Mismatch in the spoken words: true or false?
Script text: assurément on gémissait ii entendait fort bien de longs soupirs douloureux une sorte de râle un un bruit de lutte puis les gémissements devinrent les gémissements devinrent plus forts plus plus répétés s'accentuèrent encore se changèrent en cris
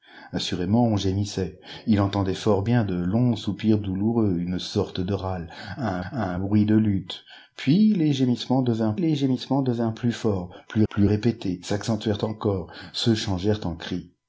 false